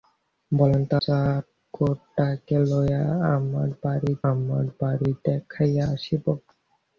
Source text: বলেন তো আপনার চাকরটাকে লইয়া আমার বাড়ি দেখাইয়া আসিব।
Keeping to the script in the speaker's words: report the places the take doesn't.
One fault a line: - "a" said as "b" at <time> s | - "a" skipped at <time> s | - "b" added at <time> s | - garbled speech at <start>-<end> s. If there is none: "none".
- "আপনার" skipped at 0.9 s
- "আমার বাড়ি" added at 4.3 s